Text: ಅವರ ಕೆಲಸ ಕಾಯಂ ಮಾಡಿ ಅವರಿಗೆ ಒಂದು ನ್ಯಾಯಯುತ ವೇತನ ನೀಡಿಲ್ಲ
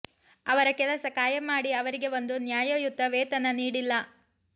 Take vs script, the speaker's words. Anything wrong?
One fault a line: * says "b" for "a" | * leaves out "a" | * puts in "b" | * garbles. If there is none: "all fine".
all fine